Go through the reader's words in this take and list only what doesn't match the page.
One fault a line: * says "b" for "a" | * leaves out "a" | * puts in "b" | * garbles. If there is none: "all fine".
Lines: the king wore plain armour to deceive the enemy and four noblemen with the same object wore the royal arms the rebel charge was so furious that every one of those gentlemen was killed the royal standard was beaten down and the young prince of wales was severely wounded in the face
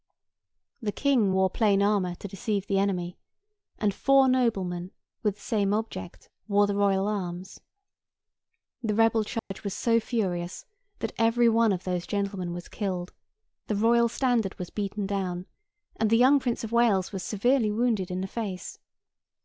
all fine